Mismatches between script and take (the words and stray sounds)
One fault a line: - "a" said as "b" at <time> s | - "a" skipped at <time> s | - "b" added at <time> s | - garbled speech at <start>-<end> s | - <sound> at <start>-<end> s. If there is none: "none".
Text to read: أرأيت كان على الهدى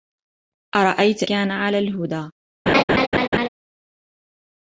- laugh at 2.7-3.5 s